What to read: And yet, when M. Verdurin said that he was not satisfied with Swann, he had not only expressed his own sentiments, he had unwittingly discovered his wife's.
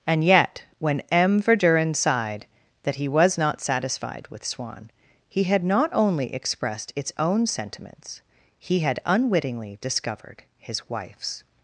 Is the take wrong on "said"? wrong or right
wrong